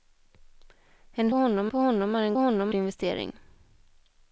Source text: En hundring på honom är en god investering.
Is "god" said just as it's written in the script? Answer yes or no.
no